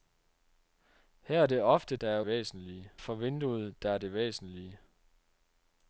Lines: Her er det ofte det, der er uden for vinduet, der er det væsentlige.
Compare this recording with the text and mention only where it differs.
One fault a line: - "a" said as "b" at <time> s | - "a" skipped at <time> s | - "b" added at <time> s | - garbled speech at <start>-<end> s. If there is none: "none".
- "det" skipped at 1.9 s
- "uden" said as "væsentlige" at 2.3 s